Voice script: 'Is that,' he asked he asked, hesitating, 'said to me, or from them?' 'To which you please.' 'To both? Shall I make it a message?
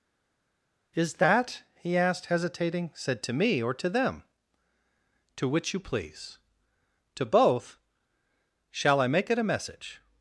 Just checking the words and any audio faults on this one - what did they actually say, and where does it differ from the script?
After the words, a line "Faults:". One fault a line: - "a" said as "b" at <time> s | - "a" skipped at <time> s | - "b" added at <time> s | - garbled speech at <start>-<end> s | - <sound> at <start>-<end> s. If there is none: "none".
'Is that,' he asked, hesitating, 'said to me, or to them?' 'To which you please.' 'To both? Shall I make it a message?
Faults:
- "he asked" skipped at 2.3 s
- "from" said as "to" at 3.7 s